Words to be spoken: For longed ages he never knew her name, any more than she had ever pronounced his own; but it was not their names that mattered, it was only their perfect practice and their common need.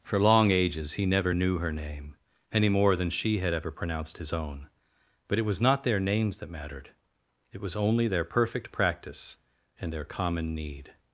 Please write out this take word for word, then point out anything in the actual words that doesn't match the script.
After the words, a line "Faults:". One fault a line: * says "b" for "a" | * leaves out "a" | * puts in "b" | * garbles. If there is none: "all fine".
For long ages he never knew her name, any more than she had ever pronounced his own; but it was not their names that mattered, it was only their perfect practice and their common need.
Faults:
* says "long" for "longed"